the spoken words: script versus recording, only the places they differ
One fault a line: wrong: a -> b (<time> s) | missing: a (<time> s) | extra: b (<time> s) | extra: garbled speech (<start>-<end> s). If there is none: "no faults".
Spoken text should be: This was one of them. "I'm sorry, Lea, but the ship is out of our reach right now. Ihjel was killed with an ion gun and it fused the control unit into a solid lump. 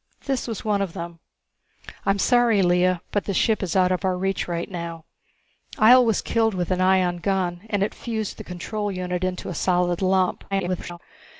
extra: garbled speech (10.5-11.0 s)